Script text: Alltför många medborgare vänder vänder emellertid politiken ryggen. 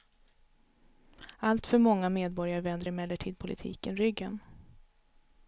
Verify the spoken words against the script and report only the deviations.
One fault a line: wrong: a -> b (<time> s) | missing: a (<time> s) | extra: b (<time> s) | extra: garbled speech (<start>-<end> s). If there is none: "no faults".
missing: vänder (2.9 s)